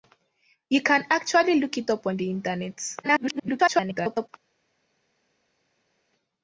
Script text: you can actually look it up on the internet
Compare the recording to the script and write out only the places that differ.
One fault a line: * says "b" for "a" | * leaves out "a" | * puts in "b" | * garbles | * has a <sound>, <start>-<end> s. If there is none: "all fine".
* garbles